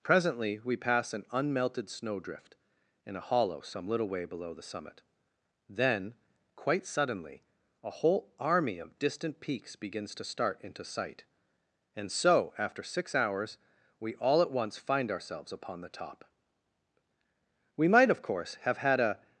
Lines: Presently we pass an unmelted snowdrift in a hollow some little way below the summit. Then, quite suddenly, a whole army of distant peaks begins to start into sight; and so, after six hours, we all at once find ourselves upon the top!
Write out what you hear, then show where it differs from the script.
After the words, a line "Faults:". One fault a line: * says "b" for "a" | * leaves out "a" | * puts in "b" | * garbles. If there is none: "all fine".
Presently we pass an unmelted snowdrift in a hollow some little way below the summit. Then, quite suddenly, a whole army of distant peaks begins to start into sight; and so, after six hours, we all at once find ourselves upon the top! We might, of course, have had a
Faults:
* puts in "We might of course have had a"